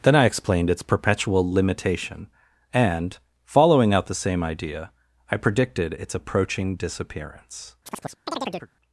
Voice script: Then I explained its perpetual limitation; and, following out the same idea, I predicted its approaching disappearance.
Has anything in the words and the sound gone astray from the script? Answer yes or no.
yes